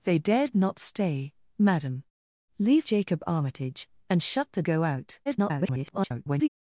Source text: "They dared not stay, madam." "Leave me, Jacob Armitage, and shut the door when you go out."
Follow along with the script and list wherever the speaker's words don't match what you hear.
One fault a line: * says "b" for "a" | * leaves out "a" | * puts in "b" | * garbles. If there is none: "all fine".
* leaves out "me"
* leaves out "door when you"
* garbles